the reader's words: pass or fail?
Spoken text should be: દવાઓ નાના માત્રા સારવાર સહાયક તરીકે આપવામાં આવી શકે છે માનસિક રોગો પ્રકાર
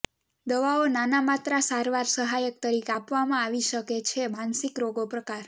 pass